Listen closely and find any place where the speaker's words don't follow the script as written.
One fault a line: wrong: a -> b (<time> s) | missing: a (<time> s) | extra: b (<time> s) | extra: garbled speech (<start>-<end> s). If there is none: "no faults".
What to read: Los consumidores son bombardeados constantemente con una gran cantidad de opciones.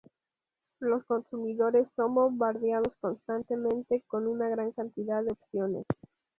no faults